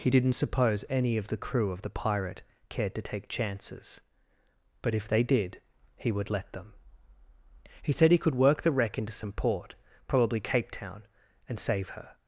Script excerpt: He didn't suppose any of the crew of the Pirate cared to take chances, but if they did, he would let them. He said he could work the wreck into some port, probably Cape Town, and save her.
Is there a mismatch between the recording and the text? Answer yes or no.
no